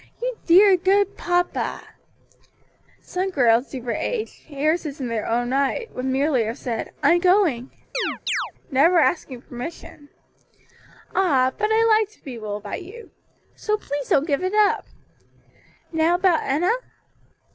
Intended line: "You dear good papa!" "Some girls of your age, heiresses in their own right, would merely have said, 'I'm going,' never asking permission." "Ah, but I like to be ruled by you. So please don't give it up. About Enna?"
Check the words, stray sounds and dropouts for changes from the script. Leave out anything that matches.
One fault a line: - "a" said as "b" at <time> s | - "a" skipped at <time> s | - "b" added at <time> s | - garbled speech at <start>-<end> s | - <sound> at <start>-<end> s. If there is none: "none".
- chirp at 7.9-8.5 s
- "Now" added at 15.9 s